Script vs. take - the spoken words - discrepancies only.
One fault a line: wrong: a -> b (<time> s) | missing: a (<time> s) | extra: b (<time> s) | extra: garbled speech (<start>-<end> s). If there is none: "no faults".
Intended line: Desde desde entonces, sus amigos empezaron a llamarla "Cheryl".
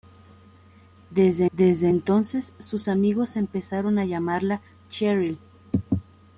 no faults